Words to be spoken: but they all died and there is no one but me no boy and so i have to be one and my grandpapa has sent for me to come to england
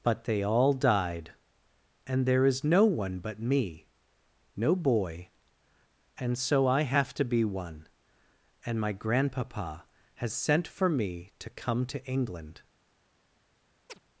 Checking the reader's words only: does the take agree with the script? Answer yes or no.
yes